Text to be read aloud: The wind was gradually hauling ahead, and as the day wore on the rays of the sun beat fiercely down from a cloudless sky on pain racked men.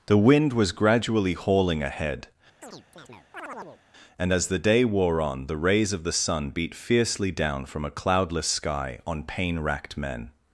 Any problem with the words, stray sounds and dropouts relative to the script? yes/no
yes